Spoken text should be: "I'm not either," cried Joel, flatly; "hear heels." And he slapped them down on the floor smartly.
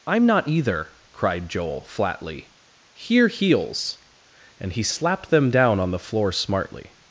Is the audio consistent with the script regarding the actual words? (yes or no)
yes